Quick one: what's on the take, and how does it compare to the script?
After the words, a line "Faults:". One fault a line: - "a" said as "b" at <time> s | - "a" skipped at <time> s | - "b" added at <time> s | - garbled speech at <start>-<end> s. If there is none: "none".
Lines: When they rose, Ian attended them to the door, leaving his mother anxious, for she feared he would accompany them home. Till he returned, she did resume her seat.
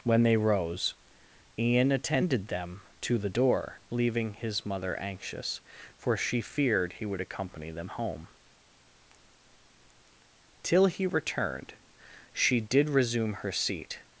When they rose, Ian attended them to the door, leaving his mother anxious, for she feared he would accompany them home. Till he returned, she did resume her seat.
Faults:
none